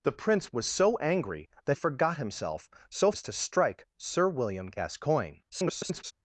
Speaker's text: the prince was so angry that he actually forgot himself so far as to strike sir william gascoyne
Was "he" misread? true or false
true